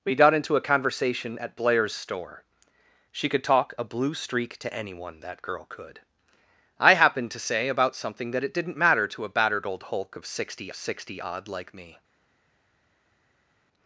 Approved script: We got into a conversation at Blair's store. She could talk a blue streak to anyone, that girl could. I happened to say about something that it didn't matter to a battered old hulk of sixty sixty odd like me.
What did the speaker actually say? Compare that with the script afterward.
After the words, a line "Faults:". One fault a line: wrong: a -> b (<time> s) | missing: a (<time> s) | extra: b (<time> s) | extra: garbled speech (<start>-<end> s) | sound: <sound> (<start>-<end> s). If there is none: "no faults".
We got into a conversation at Blair's store. She could talk a blue streak to anyone, that girl could. I happened to say about something that it didn't matter to a battered old hulk of sixty sixty odd like me.
Faults:
no faults